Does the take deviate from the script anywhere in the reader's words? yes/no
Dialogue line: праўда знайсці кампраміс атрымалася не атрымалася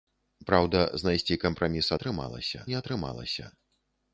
no